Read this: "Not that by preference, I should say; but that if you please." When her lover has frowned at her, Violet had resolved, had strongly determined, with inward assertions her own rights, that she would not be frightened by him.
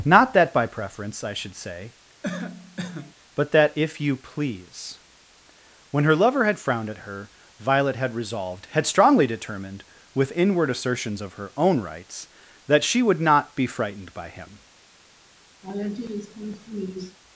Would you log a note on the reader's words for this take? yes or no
yes